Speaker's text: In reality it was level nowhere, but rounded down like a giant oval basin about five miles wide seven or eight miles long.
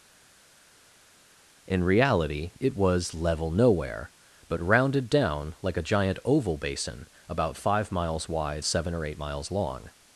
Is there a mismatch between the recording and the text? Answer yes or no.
no